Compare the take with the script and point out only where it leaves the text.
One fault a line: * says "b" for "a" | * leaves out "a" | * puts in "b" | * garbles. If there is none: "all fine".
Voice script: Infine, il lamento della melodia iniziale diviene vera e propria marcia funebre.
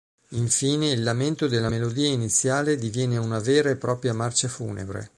* puts in "una"